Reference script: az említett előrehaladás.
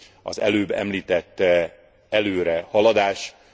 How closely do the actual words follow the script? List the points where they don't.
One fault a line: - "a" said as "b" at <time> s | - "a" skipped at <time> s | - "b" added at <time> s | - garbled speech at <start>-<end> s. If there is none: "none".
- "előbb" added at 0.4 s